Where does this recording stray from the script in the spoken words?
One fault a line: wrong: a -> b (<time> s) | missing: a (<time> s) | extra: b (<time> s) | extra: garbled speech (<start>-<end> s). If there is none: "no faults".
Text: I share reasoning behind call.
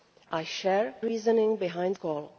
no faults